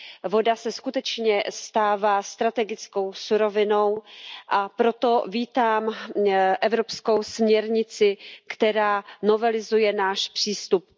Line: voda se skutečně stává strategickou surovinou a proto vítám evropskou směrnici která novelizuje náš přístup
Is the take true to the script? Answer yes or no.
yes